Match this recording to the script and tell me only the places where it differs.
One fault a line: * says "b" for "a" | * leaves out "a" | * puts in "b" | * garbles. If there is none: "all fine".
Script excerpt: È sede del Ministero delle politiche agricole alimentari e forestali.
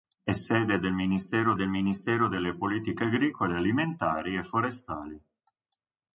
* puts in "del Ministero"